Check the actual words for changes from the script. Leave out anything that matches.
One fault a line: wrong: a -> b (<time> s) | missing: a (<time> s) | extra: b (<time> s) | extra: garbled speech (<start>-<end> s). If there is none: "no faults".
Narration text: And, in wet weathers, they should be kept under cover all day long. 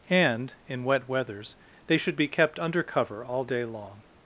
no faults